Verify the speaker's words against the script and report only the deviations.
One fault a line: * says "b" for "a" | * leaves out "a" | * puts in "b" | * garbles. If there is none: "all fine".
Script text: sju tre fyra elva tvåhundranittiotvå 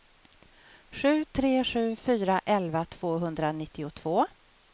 * puts in "sju"